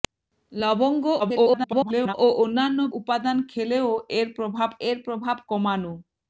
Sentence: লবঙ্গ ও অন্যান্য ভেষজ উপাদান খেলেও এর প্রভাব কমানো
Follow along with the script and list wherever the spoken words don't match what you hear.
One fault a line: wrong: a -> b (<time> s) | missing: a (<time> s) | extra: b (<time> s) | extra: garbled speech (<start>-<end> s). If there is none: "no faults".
extra: garbled speech (1.2-2.1 s)
missing: ভেষজ (2.8 s)
extra: এর প্রভাব (4.9 s)